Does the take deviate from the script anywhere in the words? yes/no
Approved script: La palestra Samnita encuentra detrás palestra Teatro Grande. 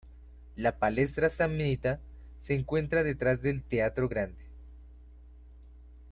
yes